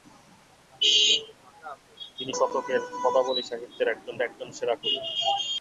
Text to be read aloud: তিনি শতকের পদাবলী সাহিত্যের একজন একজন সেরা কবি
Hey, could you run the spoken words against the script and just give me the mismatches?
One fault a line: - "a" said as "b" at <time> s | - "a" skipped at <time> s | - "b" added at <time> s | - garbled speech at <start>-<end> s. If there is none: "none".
none